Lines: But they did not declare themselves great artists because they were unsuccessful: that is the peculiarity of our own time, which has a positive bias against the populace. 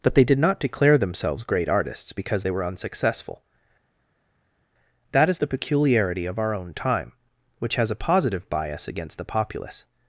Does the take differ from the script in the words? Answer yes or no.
no